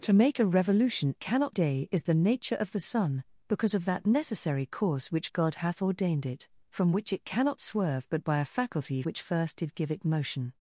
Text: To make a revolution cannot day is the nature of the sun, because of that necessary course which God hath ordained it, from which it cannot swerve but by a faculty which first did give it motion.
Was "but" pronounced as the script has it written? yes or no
yes